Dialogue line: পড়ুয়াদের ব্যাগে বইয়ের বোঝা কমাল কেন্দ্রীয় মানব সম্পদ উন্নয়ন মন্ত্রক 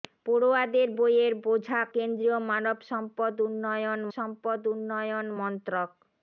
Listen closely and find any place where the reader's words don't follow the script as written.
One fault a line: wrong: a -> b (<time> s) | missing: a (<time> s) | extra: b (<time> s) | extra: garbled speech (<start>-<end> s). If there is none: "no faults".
missing: ব্যাগে (0.9 s)
missing: কমাল (1.8 s)
extra: সম্পদ উন্নয়ন (4.2 s)